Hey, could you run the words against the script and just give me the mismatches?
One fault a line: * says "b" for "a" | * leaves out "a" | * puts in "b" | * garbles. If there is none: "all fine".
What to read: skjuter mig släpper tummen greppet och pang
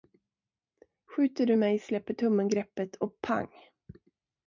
* puts in "du"